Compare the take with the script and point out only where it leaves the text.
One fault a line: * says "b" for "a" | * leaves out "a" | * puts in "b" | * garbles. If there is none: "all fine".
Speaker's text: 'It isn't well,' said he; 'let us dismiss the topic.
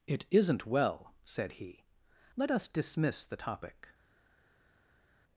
all fine